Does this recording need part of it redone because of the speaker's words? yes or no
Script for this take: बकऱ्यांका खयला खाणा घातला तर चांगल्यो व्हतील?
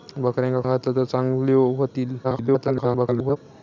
yes